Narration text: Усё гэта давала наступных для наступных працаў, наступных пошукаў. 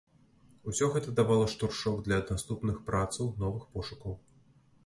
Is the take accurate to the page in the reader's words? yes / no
no